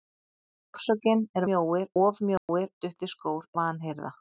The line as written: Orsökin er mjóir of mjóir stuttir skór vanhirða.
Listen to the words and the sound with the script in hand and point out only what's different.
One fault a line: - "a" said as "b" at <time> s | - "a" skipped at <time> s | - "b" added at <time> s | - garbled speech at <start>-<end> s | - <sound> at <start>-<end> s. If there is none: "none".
- dropout at 2.4-2.5 s